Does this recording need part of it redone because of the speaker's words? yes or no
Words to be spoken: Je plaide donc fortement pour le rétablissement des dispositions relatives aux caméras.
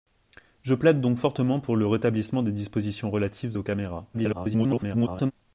yes